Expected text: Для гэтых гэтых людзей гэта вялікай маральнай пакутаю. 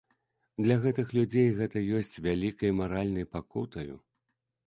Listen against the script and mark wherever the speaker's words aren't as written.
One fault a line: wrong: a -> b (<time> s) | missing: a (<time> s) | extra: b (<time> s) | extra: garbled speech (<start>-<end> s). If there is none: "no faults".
missing: гэтых (1.1 s)
extra: ёсць (2.0 s)